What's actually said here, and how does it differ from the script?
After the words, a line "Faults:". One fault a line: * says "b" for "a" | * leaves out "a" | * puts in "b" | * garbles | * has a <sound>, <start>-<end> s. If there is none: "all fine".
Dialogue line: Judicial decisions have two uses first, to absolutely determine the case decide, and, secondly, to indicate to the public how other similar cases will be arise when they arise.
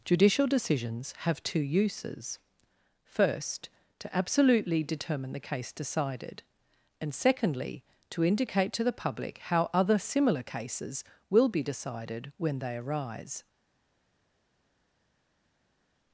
Judicial decisions have two uses first, to absolutely determine the case decided, and, secondly, to indicate to the public how other similar cases will be decided when they arise.
Faults:
* says "decided" for "decide"
* says "decided" for "arise"